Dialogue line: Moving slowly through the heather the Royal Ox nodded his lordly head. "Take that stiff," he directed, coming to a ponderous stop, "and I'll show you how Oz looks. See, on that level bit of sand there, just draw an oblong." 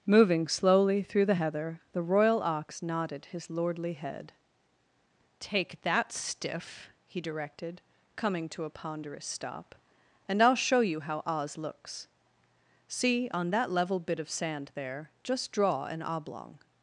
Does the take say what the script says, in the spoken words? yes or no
yes